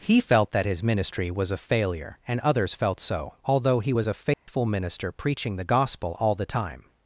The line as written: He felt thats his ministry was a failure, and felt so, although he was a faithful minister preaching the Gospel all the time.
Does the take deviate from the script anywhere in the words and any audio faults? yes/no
yes